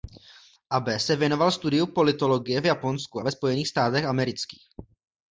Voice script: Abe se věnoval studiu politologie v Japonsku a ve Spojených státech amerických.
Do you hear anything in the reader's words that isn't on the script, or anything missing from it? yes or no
no